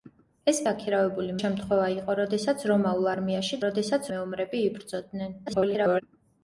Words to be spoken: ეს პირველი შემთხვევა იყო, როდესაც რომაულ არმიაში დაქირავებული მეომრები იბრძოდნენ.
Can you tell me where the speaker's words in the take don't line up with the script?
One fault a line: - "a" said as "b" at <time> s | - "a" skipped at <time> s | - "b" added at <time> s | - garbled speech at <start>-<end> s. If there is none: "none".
- "პირველი" said as "დაქირავებული" at 0.7 s
- "დაქირავებული" said as "როდესაც" at 3.7 s
- garbled speech at 5.5-6.0 s